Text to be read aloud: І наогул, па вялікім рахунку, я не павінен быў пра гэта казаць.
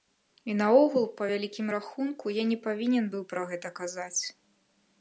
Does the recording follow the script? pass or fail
pass